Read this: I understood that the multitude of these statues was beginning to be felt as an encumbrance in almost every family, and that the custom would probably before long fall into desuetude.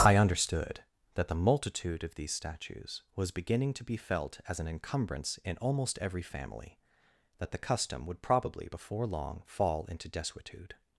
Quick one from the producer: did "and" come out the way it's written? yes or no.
no